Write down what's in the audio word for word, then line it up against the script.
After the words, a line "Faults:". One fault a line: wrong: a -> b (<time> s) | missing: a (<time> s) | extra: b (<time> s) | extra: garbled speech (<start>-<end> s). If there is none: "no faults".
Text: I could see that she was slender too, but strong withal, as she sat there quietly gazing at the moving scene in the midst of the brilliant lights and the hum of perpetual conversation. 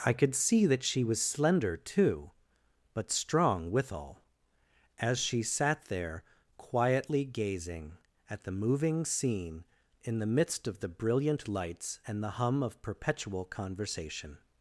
I could see that she was slender too, but strong withal, as she sat there quietly gazing at the moving scene in the midst of the brilliant lights and the hum of perpetual conversation.
Faults:
no faults